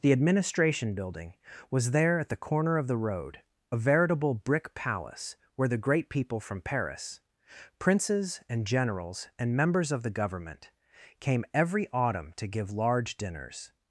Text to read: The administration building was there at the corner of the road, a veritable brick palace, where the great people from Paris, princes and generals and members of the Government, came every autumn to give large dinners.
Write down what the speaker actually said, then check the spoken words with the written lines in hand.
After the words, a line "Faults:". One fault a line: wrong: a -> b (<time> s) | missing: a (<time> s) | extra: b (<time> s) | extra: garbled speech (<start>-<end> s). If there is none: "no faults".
The administration building was there at the corner of the road, a veritable brick palace, where the great people from Paris, princes and generals and members of the Government, came every autumn to give large dinners.
Faults:
no faults